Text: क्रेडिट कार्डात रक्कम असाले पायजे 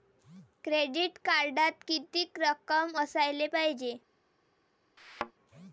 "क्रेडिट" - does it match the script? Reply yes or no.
yes